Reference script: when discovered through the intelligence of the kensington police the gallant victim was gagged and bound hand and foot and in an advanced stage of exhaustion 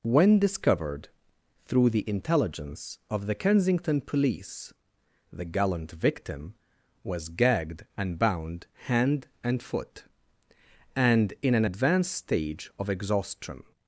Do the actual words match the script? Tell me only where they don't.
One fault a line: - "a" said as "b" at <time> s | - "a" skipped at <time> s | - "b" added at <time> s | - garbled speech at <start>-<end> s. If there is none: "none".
none